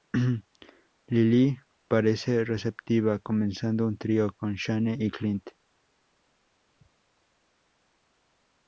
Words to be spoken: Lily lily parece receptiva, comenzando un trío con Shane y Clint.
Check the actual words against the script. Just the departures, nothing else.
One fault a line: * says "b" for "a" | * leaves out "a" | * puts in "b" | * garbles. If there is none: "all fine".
* leaves out "lily"